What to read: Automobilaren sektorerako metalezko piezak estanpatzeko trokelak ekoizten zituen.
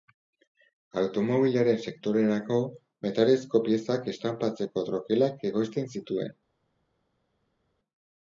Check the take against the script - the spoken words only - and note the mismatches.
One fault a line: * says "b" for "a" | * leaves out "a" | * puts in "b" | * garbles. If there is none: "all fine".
all fine